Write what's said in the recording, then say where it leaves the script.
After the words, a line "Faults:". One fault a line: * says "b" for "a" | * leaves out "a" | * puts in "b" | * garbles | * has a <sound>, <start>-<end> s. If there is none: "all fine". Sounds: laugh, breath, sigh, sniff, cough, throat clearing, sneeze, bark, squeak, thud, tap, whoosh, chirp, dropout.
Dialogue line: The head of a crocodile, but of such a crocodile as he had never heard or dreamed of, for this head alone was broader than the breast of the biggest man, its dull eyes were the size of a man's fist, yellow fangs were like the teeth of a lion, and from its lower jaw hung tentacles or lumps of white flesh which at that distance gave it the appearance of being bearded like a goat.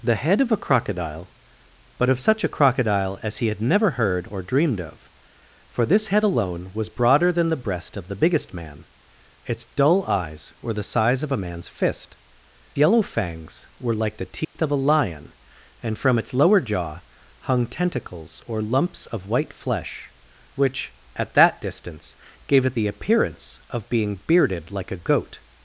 The head of a crocodile, but of such a crocodile as he had never heard or dreamed of, for this head alone was broader than the breast of the biggest man, its dull eyes were the size of a man's fist, yellow fangs were like the teeth of a lion, and from its lower jaw hung tentacles or lumps of white flesh which at that distance gave it the appearance of being bearded like a goat.
Faults:
* has a dropout, 14.4-14.6 s